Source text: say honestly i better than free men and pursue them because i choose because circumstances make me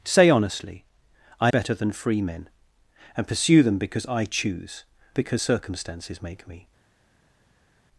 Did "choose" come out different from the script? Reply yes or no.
no